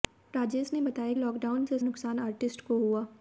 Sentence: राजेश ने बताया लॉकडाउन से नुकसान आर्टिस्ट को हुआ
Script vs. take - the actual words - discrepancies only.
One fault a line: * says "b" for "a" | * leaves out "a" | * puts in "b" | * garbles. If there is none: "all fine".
all fine